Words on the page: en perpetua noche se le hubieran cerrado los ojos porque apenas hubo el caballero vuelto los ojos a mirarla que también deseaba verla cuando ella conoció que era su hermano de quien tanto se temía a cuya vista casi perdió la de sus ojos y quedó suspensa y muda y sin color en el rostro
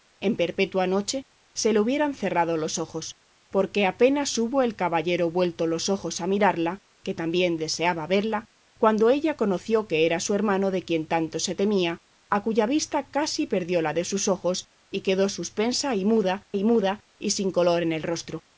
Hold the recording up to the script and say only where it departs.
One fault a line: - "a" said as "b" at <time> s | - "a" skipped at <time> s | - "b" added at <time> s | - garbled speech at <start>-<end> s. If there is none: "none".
- "muda y" added at 16.6 s